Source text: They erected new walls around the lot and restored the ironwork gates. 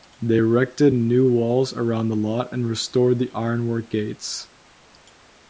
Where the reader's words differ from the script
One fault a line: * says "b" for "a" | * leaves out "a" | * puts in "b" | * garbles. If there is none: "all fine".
all fine